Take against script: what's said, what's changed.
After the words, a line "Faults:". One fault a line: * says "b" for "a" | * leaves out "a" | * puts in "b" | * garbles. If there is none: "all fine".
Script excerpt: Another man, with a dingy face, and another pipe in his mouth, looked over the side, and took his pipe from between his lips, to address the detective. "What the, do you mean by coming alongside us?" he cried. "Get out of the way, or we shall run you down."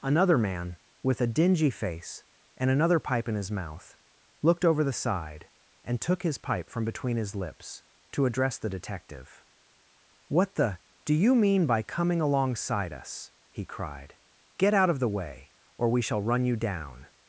Another man, with a dingy face, and another pipe in his mouth, looked over the side, and took his pipe from between his lips, to address the detective. "What the, do you mean by coming alongside us?" he cried. "Get out of the way, or we shall run you down."
Faults:
all fine